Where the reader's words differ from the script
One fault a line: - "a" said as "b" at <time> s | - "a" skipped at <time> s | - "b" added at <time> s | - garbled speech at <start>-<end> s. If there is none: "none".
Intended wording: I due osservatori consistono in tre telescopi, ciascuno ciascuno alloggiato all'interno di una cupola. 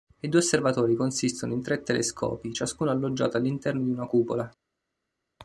- "ciascuno" skipped at 2.9 s